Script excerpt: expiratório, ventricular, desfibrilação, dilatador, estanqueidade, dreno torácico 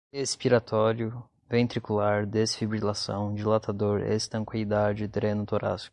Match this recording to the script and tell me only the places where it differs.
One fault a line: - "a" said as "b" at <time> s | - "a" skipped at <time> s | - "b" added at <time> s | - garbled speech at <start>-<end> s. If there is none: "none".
none